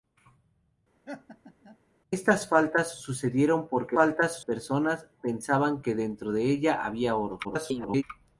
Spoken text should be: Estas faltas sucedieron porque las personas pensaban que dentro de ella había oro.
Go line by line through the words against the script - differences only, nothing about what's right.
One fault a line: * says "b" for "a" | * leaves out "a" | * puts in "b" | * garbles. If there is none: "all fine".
* says "faltas" for "las"
* garbles